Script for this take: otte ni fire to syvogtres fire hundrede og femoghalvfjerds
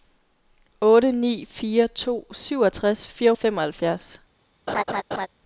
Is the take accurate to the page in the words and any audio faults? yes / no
no